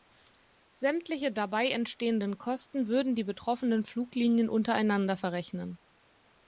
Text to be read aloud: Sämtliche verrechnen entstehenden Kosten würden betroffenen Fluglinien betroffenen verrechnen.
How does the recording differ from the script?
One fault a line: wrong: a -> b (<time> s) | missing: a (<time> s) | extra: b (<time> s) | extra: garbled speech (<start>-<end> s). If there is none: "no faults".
wrong: verrechnen -> dabei (1.3 s)
extra: die (3.1 s)
wrong: betroffenen -> untereinander (4.5 s)